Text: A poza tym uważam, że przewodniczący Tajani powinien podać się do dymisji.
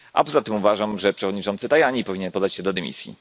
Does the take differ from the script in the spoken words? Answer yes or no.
no